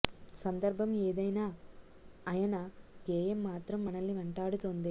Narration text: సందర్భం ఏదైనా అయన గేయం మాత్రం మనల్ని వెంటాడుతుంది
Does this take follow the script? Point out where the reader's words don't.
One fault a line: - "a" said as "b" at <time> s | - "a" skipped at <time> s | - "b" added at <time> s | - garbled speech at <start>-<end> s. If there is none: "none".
none